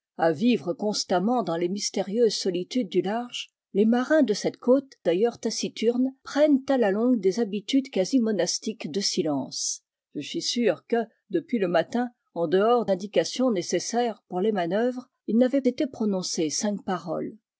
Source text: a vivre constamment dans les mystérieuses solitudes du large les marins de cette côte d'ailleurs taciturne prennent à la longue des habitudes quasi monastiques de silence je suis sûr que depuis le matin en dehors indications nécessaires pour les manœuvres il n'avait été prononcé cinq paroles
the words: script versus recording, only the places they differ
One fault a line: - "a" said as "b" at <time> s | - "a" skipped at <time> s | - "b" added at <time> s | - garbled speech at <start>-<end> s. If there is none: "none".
none